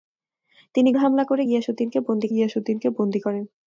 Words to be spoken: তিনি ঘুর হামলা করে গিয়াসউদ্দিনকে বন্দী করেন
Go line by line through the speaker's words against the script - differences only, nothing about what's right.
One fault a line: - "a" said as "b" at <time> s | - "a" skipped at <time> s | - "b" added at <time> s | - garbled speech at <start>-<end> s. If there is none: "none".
- "ঘুর" skipped at 0.9 s
- "গিয়াসউদ্দিনকে বন্দী" added at 2.3 s